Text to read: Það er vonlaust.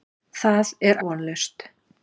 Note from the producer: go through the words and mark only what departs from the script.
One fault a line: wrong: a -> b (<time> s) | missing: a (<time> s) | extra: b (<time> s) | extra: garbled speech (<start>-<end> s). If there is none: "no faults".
no faults